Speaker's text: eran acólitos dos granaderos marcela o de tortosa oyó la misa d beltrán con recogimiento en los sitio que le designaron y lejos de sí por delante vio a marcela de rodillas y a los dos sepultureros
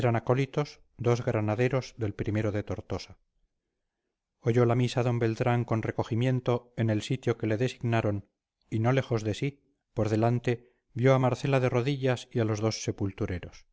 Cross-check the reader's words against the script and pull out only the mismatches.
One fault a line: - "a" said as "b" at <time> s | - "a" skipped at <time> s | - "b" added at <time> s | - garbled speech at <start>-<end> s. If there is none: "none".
- "marcela" said as "del" at 2.0 s
- "los" said as "el" at 6.9 s
- "no" added at 8.8 s